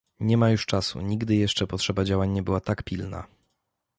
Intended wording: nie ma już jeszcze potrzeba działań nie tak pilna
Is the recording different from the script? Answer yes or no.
yes